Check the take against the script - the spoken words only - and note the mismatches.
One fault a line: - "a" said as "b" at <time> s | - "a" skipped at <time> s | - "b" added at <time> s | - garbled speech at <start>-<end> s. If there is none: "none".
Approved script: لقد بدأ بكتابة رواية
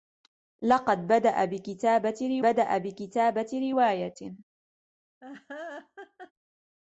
- "بدأ بكتابة" added at 2.4 s